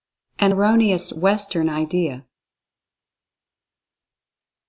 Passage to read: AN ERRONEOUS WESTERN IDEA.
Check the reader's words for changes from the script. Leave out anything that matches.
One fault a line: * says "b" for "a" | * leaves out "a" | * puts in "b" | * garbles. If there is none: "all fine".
all fine